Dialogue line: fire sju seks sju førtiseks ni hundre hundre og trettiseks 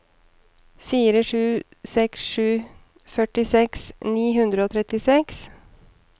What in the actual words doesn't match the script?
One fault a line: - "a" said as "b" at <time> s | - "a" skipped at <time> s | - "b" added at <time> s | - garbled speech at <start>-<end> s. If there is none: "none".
- "hundre" skipped at 4.7 s